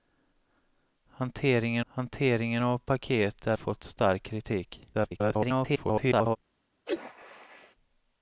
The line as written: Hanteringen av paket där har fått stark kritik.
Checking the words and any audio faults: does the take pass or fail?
fail